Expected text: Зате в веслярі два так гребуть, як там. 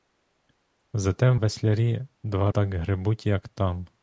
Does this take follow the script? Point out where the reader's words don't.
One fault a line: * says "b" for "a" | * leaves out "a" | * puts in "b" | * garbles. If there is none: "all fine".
all fine